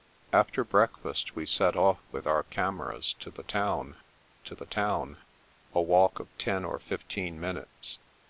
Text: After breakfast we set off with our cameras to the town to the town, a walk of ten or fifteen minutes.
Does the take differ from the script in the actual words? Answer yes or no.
no